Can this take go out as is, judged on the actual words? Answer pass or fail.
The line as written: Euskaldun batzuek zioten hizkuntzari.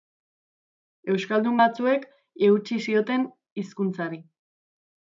fail